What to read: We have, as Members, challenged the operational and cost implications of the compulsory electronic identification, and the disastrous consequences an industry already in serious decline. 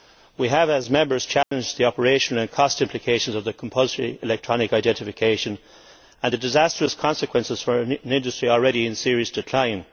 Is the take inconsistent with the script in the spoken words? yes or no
yes